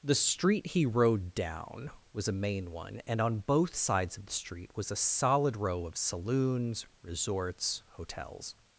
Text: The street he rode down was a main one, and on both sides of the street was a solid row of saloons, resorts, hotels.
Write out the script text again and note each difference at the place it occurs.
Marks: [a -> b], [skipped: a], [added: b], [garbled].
The street he rode down was a main one, and on both sides of the street was a solid row of saloons, resorts, hotels.